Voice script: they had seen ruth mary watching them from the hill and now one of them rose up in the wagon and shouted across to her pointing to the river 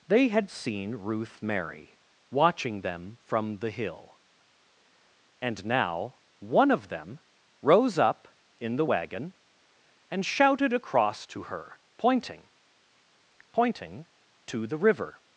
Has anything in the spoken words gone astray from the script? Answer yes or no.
yes